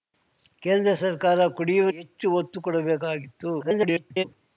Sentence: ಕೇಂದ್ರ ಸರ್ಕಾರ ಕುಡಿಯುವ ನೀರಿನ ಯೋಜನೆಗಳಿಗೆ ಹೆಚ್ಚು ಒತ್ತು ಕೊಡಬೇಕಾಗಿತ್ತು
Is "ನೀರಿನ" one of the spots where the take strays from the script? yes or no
yes